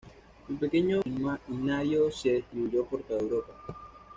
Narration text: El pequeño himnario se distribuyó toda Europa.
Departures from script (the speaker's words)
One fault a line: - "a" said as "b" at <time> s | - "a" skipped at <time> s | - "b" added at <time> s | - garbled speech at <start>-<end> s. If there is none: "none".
- "por" added at 2.9 s